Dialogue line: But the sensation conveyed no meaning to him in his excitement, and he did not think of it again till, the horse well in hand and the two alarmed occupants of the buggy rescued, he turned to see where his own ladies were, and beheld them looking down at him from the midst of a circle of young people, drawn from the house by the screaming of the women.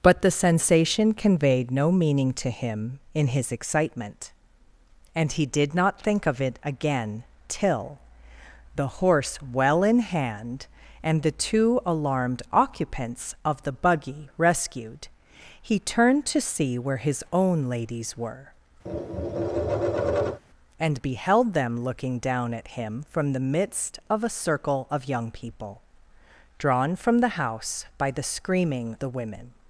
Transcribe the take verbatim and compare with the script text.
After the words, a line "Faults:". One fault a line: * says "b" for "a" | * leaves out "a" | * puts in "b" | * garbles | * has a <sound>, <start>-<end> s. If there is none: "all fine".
But the sensation conveyed no meaning to him in his excitement, and he did not think of it again till, the horse well in hand and the two alarmed occupants of the buggy rescued, he turned to see where his own ladies were, and beheld them looking down at him from the midst of a circle of young people, drawn from the house by the screaming the women.
Faults:
* has a tap, 18.9-20.4 s
* leaves out "of"